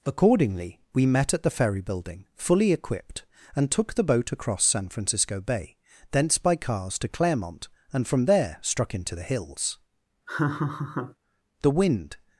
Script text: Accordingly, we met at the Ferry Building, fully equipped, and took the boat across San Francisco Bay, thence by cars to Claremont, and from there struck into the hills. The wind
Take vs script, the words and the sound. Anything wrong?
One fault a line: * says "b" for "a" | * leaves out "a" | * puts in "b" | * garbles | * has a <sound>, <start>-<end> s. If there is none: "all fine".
* has a laugh, 10.3-11.2 s